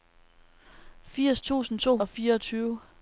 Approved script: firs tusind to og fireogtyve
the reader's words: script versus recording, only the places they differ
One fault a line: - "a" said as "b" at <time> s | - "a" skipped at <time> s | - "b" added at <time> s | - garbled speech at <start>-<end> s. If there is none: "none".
none